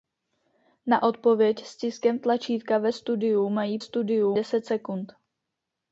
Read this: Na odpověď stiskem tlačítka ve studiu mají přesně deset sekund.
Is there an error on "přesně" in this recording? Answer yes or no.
yes